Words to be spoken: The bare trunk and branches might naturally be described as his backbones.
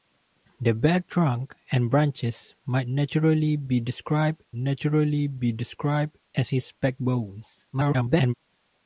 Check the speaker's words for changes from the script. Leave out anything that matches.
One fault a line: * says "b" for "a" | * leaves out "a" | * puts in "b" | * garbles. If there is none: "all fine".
* puts in "naturally be described"
* garbles